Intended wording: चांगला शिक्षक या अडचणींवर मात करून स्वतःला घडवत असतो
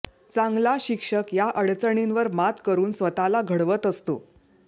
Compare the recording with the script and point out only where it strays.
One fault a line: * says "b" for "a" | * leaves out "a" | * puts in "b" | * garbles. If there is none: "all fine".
all fine